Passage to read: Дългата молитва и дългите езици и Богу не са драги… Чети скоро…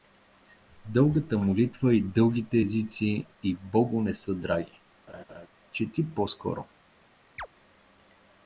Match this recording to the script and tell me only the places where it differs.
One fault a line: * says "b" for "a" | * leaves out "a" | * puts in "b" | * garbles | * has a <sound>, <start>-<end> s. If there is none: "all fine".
* has a laugh, 5.1-5.5 s
* puts in "по"
* has a chirp, 7.4-7.5 s